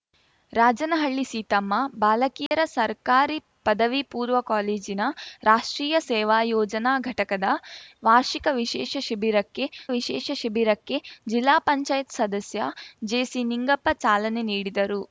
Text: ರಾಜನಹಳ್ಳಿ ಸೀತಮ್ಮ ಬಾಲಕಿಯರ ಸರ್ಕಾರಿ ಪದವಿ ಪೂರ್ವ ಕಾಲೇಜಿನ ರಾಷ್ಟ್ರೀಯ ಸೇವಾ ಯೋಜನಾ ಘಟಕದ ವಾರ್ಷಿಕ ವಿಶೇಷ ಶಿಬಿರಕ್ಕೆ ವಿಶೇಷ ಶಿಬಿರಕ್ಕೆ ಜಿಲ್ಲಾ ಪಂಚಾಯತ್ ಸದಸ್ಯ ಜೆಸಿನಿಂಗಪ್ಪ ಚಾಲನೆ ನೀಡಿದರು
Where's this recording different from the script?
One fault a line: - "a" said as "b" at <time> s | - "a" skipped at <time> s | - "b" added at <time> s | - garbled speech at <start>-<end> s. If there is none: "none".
none